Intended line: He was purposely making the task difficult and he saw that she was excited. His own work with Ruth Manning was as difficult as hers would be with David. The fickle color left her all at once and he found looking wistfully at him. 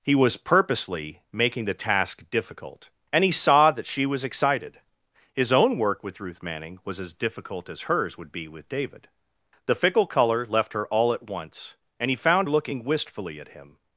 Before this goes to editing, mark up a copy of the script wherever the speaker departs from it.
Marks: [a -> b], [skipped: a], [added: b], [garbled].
He was purposely making the task difficult and he saw that she was excited. His own work with Ruth Manning was as difficult as hers would be with David. The fickle color left her all at once and he found looking wistfully at him.